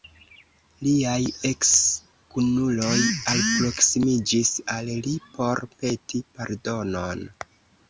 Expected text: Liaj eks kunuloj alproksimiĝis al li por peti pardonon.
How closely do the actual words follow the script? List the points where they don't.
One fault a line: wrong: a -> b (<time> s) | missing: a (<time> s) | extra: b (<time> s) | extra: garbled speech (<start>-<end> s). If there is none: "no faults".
no faults